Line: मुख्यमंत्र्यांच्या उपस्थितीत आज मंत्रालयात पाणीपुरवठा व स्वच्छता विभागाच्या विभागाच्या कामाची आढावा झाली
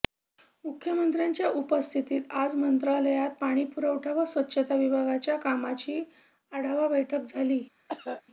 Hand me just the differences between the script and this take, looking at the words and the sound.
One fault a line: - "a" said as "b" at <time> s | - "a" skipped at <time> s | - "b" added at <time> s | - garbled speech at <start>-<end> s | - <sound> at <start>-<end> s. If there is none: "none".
- "विभागाच्या" skipped at 5.4 s
- "बैठक" added at 6.9 s
- cough at 7.9-8.2 s